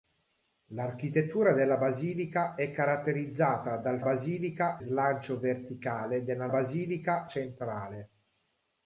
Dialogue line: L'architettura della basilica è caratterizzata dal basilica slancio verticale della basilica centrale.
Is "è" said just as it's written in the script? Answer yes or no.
yes